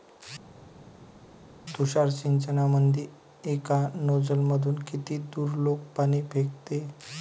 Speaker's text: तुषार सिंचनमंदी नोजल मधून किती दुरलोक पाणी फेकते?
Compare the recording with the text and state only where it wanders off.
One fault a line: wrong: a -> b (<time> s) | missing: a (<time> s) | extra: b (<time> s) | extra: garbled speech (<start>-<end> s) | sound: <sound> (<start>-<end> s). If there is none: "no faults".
extra: एका (3.5 s)